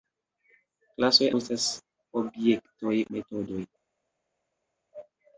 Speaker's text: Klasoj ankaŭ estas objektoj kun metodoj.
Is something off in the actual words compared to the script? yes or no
yes